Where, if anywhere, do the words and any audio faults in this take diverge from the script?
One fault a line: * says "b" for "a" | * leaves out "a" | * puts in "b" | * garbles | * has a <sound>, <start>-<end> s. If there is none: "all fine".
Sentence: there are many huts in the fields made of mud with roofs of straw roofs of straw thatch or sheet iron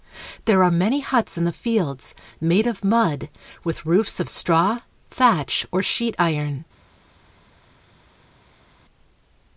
* leaves out "roofs of straw"